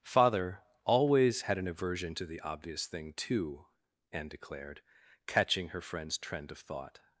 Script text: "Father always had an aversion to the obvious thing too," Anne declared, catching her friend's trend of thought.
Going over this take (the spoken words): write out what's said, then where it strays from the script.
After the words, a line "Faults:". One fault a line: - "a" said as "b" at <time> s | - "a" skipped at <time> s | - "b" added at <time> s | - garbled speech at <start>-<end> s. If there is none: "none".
"Father always had an aversion to the obvious thing too," Anne declared, catching her friend's trend of thought.
Faults:
none